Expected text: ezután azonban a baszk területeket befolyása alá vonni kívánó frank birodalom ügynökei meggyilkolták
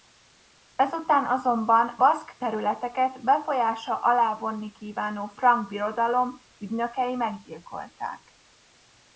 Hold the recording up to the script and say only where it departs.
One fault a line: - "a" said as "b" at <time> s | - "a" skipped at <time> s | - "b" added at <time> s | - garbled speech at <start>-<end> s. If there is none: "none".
- "a" skipped at 2.0 s